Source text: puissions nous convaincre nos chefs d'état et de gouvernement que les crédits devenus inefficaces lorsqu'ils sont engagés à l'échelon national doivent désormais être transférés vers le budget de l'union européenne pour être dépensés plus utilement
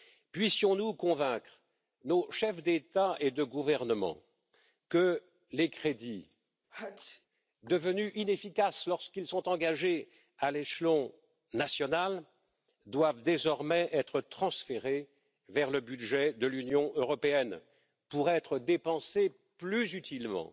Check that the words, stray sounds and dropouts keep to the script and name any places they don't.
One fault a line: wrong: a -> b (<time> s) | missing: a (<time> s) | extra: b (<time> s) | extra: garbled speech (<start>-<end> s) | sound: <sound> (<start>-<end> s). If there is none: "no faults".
sound: sneeze (6.7-7.3 s)